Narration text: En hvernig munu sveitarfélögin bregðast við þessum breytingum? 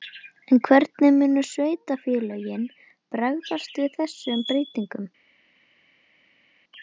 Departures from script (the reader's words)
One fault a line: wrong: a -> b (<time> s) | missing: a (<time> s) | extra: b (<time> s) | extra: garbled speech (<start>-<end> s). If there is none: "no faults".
no faults